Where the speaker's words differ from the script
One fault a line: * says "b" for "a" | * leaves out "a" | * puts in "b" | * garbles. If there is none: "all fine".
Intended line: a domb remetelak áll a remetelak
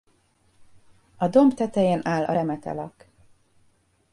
* says "tetején" for "remetelak"